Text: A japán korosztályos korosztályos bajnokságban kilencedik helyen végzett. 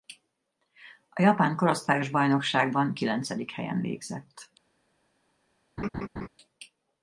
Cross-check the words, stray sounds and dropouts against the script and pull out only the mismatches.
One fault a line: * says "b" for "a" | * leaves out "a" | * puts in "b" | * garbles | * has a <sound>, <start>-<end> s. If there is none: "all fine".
* leaves out "korosztályos"
* has a laugh, 5.8-6.3 s